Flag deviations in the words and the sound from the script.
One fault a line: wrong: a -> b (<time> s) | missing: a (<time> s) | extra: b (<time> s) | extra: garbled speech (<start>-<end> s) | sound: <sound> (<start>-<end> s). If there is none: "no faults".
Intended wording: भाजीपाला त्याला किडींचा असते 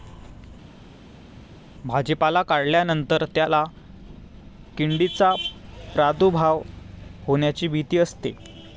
extra: काढल्यानंतर (2.4 s)
extra: प्रादुर्भाव होण्याची भीती (5.9 s)